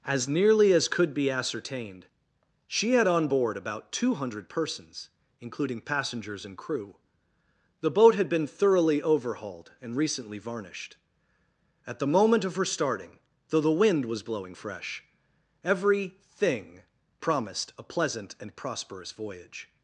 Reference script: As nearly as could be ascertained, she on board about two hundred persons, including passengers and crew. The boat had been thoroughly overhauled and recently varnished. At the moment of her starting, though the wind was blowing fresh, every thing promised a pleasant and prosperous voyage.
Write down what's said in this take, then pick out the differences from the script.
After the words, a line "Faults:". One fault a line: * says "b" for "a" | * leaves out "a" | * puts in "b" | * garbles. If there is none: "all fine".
As nearly as could be ascertained, she had on board about two hundred persons, including passengers and crew. The boat had been thoroughly overhauled and recently varnished. At the moment of her starting, though the wind was blowing fresh, every thing promised a pleasant and prosperous voyage.
Faults:
* puts in "had"